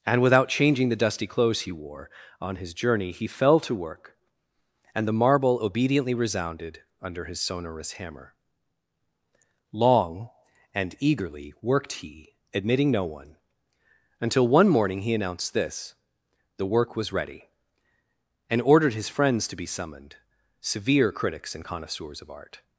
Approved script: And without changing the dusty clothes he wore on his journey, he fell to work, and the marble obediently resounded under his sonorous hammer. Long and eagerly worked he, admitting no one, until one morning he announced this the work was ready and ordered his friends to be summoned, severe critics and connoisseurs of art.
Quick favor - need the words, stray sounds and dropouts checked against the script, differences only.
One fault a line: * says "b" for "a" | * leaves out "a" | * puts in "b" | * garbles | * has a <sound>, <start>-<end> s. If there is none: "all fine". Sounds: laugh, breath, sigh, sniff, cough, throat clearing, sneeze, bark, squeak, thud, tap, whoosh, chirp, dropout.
all fine